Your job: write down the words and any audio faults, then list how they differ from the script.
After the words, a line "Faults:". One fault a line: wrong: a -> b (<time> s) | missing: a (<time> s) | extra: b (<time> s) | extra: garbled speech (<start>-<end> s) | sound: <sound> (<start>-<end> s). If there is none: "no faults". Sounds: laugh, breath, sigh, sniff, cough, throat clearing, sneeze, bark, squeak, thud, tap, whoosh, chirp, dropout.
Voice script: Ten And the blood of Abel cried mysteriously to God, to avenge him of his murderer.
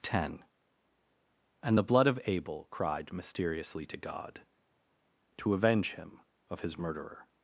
Ten And the blood of Abel cried mysteriously to God, to avenge him of his murderer.
Faults:
no faults